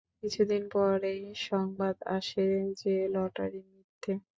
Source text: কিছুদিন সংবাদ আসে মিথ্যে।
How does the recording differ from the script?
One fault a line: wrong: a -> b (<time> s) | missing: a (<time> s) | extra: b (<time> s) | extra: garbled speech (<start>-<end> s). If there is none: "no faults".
extra: পরেই (0.7 s)
extra: যে লটারি (2.8 s)